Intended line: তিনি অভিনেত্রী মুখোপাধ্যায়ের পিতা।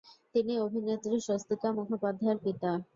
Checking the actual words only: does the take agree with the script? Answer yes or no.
no